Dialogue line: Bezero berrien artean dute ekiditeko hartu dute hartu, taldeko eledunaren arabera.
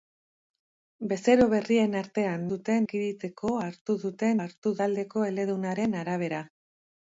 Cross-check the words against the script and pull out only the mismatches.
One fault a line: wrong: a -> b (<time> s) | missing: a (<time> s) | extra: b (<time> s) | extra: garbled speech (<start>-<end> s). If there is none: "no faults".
no faults